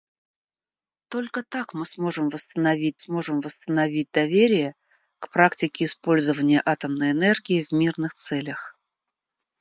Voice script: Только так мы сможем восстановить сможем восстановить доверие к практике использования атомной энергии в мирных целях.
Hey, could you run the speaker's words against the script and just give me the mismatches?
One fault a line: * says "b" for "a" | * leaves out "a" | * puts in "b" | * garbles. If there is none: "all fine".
all fine